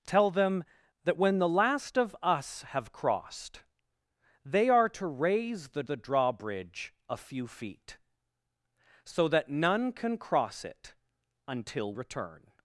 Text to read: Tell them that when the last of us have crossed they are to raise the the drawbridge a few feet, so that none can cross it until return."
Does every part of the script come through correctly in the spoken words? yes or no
yes